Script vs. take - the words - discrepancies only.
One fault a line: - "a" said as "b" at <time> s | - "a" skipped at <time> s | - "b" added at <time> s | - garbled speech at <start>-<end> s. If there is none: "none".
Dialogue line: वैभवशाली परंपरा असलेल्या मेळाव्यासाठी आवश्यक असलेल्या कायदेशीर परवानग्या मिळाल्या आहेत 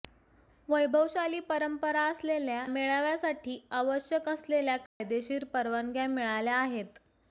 none